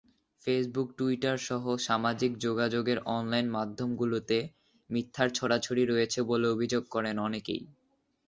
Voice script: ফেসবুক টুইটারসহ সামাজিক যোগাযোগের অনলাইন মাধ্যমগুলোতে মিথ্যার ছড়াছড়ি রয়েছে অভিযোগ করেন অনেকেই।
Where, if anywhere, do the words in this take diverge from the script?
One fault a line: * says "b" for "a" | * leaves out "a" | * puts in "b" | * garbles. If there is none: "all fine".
* puts in "বলে"